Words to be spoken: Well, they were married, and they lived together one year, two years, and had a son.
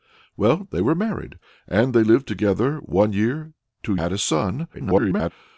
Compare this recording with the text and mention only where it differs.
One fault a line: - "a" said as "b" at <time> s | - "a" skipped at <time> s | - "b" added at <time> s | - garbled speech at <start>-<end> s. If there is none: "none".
- "years and" skipped at 4.0 s
- garbled speech at 4.7-5.3 s